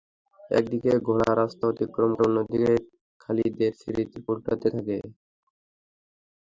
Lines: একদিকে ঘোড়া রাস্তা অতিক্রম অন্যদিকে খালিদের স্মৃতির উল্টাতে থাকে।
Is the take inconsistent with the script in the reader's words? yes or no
no